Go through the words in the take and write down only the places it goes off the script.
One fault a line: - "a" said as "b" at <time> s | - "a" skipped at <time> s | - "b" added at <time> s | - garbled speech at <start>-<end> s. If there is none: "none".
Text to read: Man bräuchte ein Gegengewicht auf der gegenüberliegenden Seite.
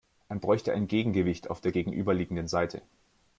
none